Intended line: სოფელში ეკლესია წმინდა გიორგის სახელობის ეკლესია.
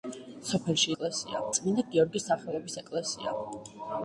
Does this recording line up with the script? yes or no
yes